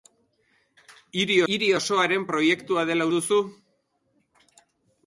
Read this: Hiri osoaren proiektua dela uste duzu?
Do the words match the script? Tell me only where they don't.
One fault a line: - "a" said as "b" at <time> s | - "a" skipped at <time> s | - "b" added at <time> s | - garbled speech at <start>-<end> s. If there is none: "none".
- "hiri" added at 1.5 s
- "uste" skipped at 3.1 s